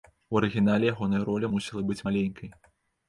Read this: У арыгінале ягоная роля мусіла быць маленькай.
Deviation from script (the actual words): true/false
false